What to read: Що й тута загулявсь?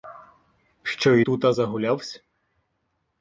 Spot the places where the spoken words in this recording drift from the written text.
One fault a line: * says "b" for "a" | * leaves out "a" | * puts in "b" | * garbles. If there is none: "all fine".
all fine